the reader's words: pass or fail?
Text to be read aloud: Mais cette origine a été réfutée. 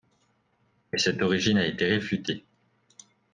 pass